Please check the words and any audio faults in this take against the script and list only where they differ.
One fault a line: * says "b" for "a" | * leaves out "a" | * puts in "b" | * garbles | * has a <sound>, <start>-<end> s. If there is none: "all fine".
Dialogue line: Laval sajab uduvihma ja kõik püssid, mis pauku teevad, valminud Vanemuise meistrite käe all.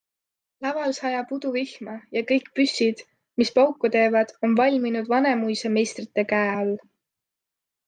* puts in "on"